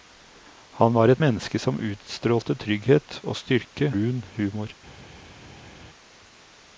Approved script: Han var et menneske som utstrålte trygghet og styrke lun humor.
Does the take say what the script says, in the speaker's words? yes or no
yes